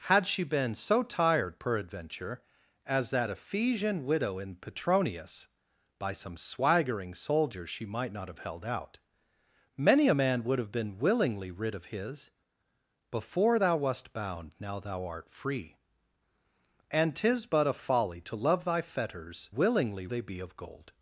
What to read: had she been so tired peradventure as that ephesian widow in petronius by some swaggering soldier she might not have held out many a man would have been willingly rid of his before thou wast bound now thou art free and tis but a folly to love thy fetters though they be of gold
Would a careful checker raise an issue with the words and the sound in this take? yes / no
yes